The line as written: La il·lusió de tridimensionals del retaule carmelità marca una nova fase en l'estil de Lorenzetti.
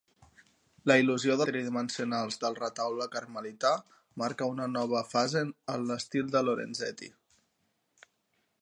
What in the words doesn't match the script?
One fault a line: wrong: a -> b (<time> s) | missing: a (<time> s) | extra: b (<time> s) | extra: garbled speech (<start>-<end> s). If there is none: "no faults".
no faults